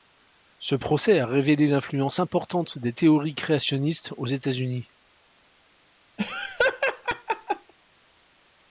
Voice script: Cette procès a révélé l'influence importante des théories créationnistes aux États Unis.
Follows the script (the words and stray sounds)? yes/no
no